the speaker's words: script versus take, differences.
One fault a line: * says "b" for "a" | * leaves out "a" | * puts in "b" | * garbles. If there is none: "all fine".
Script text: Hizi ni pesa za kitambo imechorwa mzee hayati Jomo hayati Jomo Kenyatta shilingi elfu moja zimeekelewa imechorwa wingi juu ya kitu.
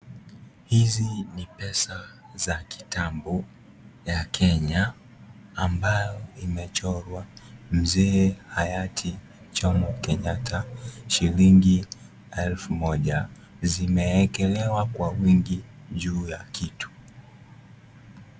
* puts in "ya Kenya ambayo"
* leaves out "hayati Jomo"
* says "kwa" for "imechorwa"